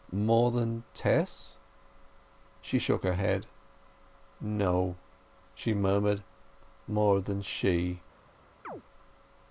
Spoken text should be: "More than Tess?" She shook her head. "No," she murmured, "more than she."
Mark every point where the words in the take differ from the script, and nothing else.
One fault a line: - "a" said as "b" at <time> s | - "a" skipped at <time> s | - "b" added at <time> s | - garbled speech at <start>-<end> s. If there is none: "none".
none